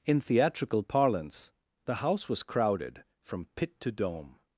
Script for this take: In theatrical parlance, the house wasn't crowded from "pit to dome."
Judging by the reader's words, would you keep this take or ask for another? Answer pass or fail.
fail